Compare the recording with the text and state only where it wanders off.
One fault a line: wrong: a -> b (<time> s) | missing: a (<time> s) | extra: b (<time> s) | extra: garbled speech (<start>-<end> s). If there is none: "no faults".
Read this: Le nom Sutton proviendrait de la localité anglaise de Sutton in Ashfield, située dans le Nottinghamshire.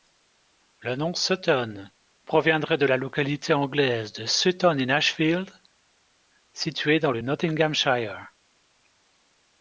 no faults